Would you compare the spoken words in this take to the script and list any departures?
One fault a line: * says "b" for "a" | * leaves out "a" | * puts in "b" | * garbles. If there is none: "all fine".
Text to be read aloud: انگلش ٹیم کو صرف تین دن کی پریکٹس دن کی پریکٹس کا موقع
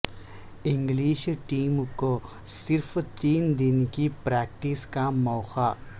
* leaves out "دن کی پریکٹس"